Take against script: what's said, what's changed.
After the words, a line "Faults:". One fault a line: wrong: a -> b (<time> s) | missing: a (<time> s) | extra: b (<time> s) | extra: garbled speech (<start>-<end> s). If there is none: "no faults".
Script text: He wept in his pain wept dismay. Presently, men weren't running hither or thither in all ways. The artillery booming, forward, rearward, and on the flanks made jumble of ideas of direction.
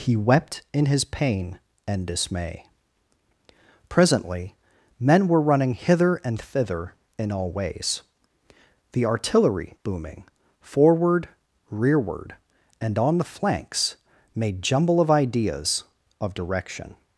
He wept in his pain and dismay. Presently, men were running hither and thither in all ways. The artillery booming, forward, rearward, and on the flanks made jumble of ideas of direction.
Faults:
wrong: wept -> and (1.8 s)
wrong: weren't -> were (5.3 s)
wrong: or -> and (6.2 s)